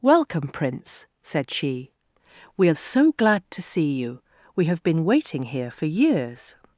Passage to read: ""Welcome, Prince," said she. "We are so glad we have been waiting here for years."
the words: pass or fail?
fail